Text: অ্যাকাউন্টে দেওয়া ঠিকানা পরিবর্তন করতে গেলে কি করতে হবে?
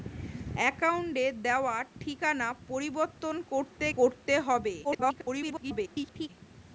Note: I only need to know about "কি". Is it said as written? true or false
false